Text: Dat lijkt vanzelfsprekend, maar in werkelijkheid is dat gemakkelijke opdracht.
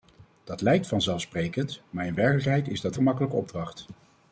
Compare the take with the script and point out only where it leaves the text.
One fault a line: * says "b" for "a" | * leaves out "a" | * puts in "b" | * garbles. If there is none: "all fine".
all fine